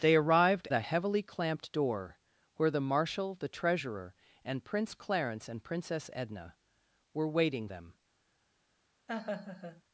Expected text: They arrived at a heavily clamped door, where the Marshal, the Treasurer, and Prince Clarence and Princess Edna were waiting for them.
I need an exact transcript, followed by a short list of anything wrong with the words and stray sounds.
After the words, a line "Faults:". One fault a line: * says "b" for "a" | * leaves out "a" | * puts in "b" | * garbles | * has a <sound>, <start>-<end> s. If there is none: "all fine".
They arrived a heavily clamped door, where the Marshal, the Treasurer, and Prince Clarence and Princess Edna were waiting them.
Faults:
* leaves out "at"
* leaves out "for"
* has a laugh, 9.1-9.8 s